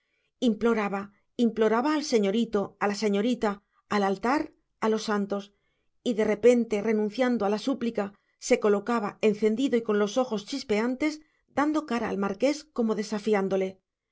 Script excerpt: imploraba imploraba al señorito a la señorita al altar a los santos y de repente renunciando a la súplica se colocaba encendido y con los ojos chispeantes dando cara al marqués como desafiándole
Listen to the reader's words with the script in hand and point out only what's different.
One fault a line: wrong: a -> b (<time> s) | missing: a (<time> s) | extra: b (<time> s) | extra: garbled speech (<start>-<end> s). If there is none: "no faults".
no faults